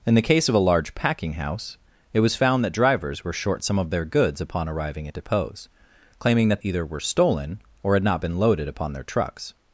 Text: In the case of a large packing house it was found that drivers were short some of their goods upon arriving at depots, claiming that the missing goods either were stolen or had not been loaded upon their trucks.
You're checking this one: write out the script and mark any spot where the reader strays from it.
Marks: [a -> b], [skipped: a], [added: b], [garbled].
In the case of a large packing house it was found that drivers were short some of their goods upon arriving at depots, claiming that [skipped: the missing goods] either were stolen or had not been loaded upon their trucks.